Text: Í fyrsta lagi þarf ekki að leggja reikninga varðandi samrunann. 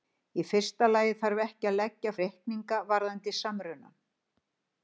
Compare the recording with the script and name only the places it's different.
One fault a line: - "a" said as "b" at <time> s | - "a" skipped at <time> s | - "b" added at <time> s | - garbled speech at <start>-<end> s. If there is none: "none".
none